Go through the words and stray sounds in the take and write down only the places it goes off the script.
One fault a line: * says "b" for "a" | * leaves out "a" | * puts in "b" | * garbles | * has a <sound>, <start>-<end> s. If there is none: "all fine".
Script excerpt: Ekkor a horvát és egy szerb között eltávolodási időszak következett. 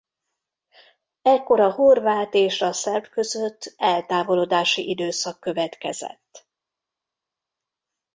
* says "a" for "egy"